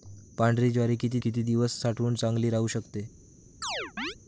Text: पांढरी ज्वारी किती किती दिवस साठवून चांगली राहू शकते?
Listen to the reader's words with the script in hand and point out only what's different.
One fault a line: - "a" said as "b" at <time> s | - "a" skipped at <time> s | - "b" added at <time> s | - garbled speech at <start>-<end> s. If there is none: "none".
none